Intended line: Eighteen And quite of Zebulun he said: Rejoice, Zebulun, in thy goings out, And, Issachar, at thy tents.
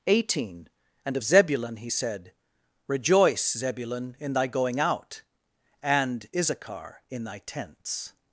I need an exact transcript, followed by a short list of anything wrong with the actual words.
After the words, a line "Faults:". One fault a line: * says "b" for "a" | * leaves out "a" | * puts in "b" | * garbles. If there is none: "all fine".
Eighteen And of Zebulun he said: Rejoice, Zebulun, in thy going out, And, Issachar, in thy tents.
Faults:
* leaves out "quite"
* says "going" for "goings"
* says "in" for "at"